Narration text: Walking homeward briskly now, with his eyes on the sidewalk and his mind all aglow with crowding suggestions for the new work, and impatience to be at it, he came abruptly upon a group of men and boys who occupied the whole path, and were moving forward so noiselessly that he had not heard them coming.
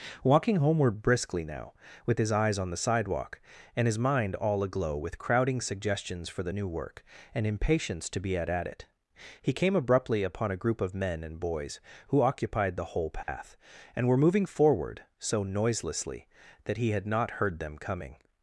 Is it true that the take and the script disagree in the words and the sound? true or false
true